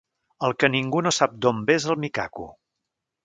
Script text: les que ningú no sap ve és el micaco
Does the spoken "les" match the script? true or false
false